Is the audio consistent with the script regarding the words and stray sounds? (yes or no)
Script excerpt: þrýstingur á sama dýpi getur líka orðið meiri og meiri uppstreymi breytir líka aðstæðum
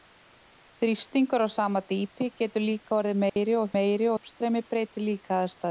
no